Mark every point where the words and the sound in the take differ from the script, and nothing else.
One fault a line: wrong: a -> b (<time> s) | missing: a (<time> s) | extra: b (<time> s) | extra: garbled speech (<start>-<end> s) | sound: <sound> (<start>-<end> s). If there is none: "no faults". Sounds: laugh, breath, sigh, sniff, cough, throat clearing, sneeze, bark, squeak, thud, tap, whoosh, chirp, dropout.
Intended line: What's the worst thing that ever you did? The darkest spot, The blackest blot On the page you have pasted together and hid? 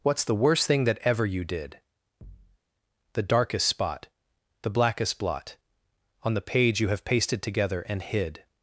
sound: thud (2.2-2.6 s)